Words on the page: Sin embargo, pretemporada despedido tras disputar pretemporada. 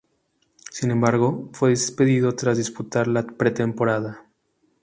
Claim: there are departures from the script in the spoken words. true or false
true